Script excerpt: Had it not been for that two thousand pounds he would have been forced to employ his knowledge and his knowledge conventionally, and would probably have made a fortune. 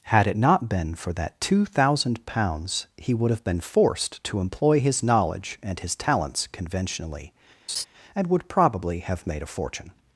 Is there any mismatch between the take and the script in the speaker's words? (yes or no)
yes